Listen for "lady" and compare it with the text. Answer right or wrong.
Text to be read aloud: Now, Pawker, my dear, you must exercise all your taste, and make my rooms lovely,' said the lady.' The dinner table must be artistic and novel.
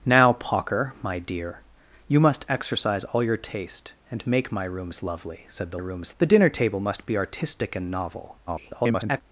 wrong